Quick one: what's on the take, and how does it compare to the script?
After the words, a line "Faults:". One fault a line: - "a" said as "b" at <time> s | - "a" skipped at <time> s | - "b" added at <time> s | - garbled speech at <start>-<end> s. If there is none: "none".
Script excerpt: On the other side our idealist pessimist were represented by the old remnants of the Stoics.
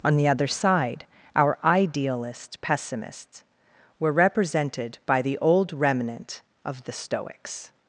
On the other side our idealist pessimists were represented by the old remnant of the Stoics.
Faults:
- "pessimist" said as "pessimists" at 2.6 s
- "remnants" said as "remnant" at 5.7 s